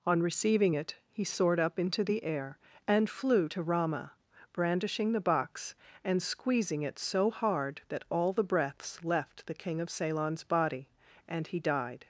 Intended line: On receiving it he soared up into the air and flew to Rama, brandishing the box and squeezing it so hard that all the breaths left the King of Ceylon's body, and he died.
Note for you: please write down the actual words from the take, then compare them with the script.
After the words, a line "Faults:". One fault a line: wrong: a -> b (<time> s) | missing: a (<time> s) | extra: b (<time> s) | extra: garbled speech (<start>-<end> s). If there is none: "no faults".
On receiving it he soared up into the air and flew to Rama, brandishing the box and squeezing it so hard that all the breaths left the King of Ceylon's body, and he died.
Faults:
no faults